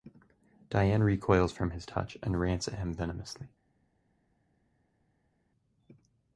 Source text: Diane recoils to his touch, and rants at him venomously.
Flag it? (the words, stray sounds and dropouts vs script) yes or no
yes